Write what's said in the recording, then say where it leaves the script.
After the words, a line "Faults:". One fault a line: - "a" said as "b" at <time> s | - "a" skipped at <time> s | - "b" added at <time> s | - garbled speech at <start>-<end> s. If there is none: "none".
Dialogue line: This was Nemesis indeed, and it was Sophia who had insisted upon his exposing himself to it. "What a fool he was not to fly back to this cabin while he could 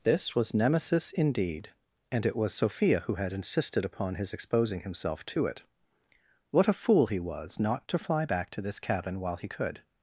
This was Nemesis indeed, and it was Sophia who had insisted upon his exposing himself to it. "What a fool he was not to fly back to this cabin while he could
Faults:
none